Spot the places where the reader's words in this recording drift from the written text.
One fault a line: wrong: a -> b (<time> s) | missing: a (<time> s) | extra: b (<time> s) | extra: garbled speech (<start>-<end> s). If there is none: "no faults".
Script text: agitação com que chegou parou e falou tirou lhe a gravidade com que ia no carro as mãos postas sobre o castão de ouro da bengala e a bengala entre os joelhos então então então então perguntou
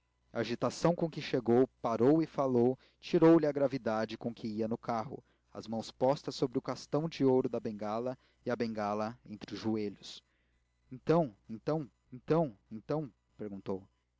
no faults